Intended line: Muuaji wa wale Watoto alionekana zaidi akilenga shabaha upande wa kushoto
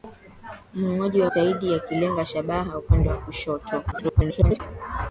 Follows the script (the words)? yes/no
no